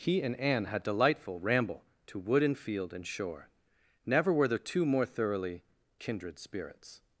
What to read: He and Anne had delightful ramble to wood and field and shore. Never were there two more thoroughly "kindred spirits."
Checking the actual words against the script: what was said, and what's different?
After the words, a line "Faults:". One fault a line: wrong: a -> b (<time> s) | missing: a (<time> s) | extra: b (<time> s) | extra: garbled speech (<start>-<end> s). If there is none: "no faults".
He and Anne had delightful ramble to wood and field and shore. Never were there two more thoroughly "kindred spirits."
Faults:
no faults